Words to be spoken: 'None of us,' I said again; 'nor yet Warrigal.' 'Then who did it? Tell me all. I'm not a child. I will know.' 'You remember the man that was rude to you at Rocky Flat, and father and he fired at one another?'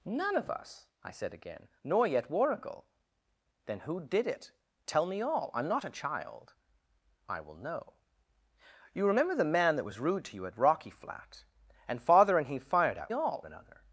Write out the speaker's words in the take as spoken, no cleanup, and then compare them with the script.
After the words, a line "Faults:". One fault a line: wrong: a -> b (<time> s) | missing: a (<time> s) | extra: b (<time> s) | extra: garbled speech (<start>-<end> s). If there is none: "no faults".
'None of us,' I said again; 'nor yet Warrigal.' 'Then who did it? Tell me all. I'm not a child. I will know.' 'You remember the man that was rude to you at Rocky Flat, and father and he fired at all another?'
Faults:
wrong: one -> all (13.1 s)